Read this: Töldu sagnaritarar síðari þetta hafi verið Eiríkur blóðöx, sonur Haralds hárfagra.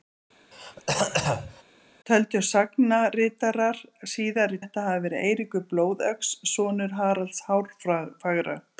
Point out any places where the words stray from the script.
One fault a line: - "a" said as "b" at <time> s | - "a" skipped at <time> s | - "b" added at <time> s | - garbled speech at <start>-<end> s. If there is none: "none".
none